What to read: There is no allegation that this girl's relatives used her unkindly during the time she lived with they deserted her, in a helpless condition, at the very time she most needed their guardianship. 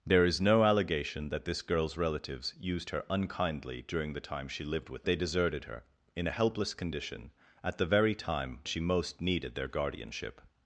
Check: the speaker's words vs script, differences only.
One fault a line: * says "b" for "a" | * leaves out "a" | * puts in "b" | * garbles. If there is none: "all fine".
all fine